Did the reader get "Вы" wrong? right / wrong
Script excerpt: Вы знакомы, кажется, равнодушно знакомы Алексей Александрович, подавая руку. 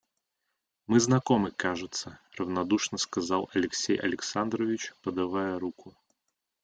wrong